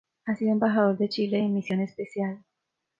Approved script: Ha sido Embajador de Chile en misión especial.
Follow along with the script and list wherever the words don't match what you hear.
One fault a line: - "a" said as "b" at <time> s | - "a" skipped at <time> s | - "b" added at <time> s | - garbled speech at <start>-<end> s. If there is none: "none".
none